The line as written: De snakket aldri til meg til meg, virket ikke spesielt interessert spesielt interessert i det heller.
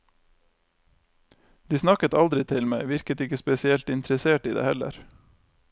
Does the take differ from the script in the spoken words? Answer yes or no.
yes